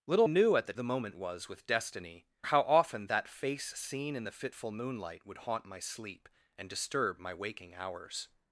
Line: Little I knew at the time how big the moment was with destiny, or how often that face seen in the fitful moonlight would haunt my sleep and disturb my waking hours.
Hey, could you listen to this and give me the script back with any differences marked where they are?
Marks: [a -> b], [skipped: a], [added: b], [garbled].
Little [skipped: I] knew at the [skipped: time how big] the moment was with destiny, [skipped: or] how often that face seen in the fitful moonlight would haunt my sleep and disturb my waking hours.